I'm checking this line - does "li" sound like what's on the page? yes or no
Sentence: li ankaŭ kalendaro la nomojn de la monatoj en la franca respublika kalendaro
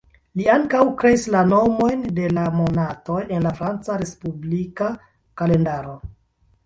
yes